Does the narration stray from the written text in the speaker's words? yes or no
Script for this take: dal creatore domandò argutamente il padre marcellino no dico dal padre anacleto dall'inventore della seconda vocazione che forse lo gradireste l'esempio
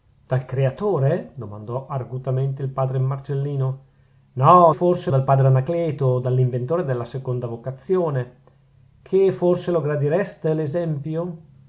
yes